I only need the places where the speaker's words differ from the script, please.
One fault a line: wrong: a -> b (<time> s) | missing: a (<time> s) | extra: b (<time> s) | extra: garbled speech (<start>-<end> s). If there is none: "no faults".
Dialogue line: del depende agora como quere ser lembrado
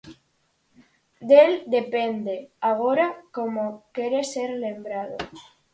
no faults